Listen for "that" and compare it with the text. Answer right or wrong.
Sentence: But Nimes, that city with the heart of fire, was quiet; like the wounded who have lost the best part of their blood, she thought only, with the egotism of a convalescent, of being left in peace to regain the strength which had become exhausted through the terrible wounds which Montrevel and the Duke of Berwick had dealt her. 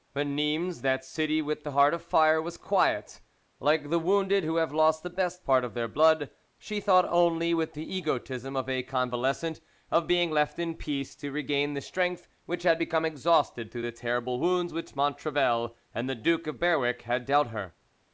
right